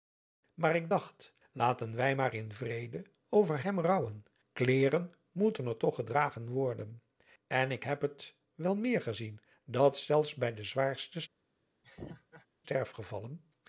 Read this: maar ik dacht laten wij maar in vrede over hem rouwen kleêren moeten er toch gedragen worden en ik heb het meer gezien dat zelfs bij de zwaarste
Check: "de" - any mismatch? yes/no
no